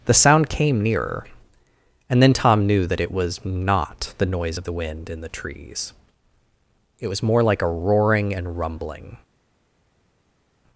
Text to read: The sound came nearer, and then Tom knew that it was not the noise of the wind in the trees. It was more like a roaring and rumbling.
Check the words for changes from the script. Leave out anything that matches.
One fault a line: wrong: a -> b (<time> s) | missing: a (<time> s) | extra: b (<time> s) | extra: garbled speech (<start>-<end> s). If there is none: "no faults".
no faults